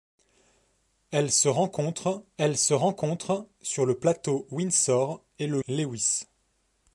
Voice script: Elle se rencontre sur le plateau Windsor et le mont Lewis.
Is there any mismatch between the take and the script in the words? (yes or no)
yes